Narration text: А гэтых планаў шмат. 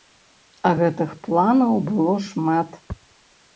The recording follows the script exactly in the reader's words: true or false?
false